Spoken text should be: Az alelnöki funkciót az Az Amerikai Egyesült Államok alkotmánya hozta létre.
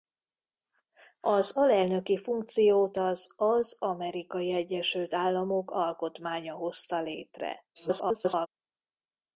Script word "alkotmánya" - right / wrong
right